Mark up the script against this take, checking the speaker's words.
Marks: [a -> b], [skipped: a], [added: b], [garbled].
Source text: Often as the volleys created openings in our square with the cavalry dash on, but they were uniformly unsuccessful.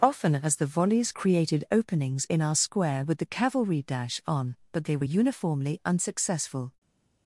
Often as the volleys created openings in our square with the cavalry dash on, but they were uniformly unsuccessful.